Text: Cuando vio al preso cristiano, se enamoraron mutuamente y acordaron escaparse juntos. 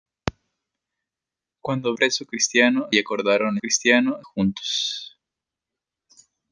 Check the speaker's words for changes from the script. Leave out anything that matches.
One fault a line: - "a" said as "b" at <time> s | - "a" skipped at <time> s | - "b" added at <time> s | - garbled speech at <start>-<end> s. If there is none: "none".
- "vio al" skipped at 1.9 s
- "se enamoraron mutuamente" skipped at 2.9 s
- "escaparse" said as "cristiano" at 3.6 s